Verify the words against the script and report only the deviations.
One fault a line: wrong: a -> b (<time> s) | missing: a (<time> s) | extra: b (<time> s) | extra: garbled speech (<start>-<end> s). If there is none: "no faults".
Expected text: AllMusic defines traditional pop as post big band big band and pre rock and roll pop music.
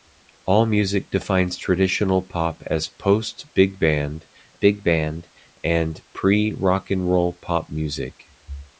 no faults